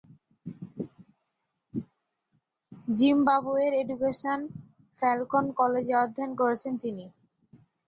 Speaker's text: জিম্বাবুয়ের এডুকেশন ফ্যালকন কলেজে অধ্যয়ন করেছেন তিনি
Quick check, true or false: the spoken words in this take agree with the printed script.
true